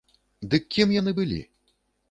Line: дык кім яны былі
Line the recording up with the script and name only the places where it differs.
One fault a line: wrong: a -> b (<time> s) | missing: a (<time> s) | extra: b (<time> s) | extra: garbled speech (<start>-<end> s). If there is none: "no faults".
no faults